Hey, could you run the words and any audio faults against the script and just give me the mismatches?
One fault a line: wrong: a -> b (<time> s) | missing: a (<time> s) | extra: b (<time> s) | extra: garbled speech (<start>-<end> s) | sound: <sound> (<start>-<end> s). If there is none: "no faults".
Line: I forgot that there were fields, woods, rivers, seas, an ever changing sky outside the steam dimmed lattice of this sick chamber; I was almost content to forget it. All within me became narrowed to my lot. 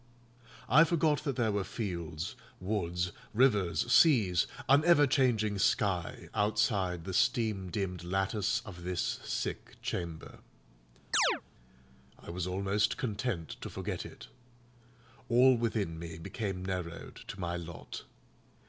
sound: chirp (11.1-11.4 s)